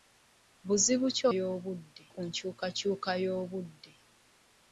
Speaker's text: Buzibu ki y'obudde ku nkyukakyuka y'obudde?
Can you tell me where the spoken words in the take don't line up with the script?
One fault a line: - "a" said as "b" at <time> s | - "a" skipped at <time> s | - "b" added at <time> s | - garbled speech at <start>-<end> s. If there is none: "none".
none